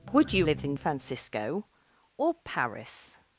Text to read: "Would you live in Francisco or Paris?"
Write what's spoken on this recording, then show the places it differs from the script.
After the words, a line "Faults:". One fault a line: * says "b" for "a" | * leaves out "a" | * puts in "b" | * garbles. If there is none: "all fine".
"Would you live in Francisco or Paris?"
Faults:
all fine